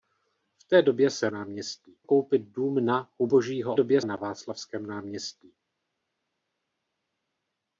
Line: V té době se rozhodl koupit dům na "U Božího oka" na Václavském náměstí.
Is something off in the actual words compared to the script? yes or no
yes